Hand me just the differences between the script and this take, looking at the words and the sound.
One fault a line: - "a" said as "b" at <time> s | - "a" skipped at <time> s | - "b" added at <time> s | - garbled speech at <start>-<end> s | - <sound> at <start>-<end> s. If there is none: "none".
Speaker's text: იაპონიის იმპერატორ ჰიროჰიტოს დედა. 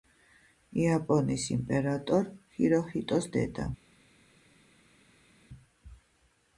none